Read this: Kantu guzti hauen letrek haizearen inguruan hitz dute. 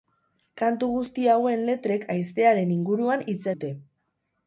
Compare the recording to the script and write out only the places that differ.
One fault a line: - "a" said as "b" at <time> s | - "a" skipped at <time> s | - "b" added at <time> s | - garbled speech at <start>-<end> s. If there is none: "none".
none